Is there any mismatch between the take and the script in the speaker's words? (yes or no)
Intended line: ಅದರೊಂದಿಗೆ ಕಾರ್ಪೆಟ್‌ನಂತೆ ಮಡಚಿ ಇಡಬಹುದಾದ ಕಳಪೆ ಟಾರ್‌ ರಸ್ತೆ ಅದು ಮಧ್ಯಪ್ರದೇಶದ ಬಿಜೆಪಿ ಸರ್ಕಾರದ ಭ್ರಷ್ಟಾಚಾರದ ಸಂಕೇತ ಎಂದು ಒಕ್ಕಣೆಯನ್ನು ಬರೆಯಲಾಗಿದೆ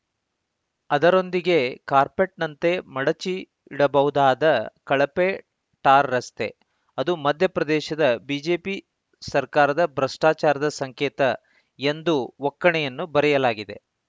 no